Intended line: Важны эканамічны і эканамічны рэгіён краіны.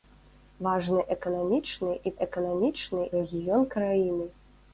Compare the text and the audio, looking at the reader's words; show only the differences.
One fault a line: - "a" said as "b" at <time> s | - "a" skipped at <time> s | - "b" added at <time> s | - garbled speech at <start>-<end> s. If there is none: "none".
none